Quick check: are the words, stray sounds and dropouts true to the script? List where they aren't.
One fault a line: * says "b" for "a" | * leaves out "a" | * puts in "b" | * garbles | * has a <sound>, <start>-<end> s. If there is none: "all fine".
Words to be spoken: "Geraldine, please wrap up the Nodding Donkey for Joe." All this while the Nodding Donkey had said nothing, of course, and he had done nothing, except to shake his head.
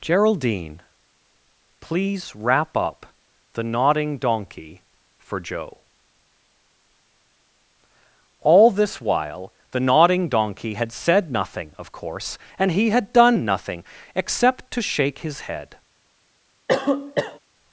* has a cough, 16.7-17.4 s